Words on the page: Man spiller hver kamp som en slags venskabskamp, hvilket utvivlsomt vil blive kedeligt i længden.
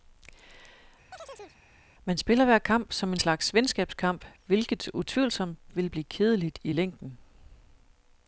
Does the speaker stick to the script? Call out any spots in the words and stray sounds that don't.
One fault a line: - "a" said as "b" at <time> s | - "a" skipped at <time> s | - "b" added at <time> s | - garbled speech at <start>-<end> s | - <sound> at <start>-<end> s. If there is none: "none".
- chirp at 1.1-1.6 s